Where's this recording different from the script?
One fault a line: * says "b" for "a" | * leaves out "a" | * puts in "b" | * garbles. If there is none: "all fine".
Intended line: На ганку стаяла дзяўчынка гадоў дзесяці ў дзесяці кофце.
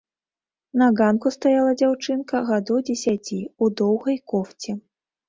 * says "доўгай" for "дзесяці"